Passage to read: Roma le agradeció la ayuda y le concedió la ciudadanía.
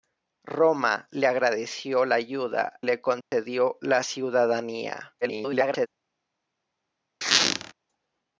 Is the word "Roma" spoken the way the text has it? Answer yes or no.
yes